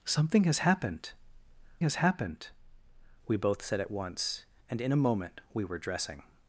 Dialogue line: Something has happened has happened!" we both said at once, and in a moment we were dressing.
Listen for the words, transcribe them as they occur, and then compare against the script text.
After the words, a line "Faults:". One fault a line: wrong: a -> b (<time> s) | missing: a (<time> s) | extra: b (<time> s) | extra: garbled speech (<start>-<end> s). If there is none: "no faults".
Something has happened has happened!" we both said at once, and in a moment we were dressing.
Faults:
no faults